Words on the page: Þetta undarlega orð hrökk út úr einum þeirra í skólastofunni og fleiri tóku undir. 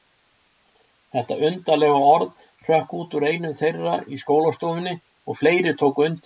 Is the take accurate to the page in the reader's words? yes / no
yes